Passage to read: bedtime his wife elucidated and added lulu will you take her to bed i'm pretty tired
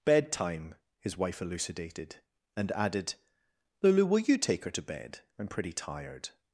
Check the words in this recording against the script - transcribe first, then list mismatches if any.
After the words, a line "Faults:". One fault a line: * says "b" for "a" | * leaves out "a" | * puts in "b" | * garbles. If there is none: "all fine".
bedtime his wife elucidated and added lulu will you take her to bed i'm pretty tired
Faults:
all fine